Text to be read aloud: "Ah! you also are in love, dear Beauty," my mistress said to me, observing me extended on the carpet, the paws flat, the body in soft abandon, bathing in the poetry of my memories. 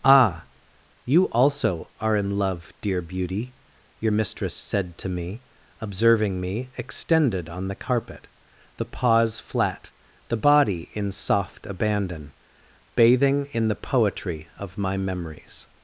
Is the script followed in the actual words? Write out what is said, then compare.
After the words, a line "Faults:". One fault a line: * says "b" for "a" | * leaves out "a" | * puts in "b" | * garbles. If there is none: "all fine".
"Ah! you also are in love, dear Beauty," your mistress said to me, observing me extended on the carpet, the paws flat, the body in soft abandon, bathing in the poetry of my memories.
Faults:
* says "your" for "my"